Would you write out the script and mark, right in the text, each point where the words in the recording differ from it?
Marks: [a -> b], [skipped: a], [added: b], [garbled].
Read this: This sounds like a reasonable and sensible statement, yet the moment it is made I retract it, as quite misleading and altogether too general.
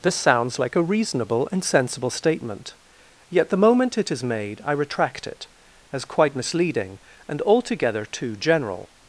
This sounds like a reasonable and sensible statement, yet the moment it is made I retract it, as quite misleading and altogether too general.